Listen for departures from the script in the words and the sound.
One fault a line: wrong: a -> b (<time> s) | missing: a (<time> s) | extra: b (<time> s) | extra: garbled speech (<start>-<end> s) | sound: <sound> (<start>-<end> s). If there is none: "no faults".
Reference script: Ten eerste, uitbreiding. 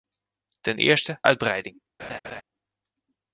sound: laugh (2.0-2.4 s)